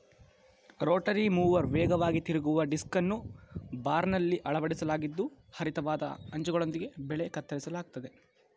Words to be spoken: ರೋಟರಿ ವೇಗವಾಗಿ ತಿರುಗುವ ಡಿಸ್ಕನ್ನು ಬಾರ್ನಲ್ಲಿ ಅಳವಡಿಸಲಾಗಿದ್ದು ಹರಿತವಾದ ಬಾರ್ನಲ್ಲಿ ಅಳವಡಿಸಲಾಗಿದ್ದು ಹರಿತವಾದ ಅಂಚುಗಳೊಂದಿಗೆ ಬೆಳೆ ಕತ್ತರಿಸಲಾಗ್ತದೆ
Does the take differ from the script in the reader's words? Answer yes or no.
yes